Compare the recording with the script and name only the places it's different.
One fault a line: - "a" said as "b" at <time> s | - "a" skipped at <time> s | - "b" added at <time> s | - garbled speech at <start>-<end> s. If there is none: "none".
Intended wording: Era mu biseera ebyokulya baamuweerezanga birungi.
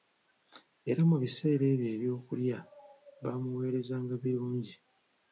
- "ebyo" added at 1.7 s